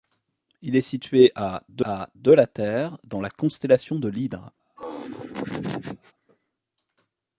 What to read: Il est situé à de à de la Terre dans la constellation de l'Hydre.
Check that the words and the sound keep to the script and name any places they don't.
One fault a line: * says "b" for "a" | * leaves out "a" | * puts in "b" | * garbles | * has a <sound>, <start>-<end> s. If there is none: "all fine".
* has a laugh, 4.8-6.1 s